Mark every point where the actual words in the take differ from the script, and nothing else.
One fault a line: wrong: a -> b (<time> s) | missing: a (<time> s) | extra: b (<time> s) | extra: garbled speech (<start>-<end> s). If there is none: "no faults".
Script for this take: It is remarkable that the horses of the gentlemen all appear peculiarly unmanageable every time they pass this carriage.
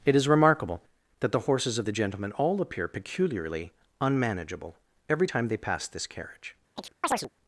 no faults